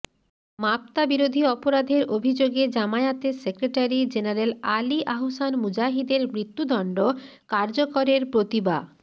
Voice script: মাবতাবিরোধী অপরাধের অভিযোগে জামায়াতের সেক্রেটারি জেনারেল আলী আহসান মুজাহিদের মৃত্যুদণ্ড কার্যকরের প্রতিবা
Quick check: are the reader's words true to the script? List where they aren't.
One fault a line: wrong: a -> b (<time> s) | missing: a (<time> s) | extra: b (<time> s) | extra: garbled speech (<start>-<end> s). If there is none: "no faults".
no faults